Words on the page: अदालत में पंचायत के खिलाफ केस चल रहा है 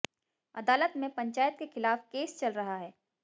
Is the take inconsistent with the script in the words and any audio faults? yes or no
no